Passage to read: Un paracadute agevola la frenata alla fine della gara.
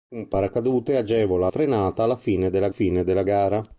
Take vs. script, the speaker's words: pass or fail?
fail